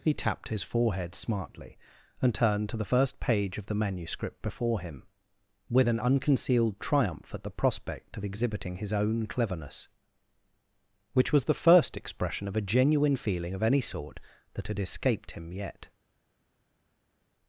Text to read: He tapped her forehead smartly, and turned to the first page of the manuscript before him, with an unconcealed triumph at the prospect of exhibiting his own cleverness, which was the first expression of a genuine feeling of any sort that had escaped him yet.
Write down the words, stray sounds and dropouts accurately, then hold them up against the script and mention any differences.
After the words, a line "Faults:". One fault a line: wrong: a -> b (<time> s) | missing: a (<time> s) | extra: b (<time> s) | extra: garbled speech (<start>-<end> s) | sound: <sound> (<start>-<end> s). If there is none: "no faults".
He tapped his forehead smartly, and turned to the first page of the manuscript before him, with an unconcealed triumph at the prospect of exhibiting his own cleverness, which was the first expression of a genuine feeling of any sort that had escaped him yet.
Faults:
wrong: her -> his (0.5 s)